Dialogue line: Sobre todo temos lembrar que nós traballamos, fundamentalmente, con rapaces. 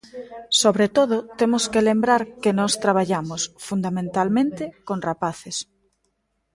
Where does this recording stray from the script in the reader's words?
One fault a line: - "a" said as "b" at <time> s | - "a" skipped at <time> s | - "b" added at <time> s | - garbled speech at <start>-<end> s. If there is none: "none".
- "que" added at 1.7 s